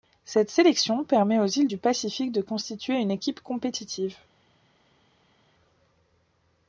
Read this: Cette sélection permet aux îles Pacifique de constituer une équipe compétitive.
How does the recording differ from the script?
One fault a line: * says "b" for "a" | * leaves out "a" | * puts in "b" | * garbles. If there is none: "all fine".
* puts in "du"